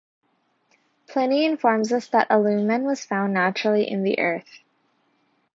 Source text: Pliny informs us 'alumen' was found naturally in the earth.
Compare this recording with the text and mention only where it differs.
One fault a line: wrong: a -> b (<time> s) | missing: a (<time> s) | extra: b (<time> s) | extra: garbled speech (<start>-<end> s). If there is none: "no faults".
extra: that (2.1 s)